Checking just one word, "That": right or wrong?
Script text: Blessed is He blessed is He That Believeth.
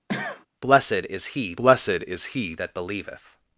right